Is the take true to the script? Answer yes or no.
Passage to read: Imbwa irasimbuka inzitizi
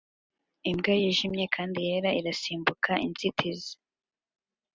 no